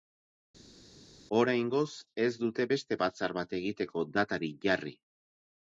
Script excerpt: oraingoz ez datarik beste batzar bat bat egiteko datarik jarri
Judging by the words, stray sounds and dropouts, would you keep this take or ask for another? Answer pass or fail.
fail